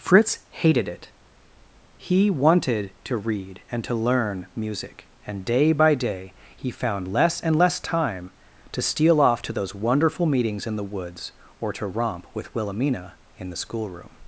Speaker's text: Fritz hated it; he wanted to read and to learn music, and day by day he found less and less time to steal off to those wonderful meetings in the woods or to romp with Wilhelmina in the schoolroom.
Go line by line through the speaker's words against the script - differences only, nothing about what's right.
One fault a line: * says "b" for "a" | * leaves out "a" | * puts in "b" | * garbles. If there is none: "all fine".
all fine